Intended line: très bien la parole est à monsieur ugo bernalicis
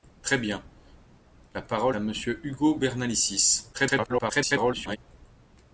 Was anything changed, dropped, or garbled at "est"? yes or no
yes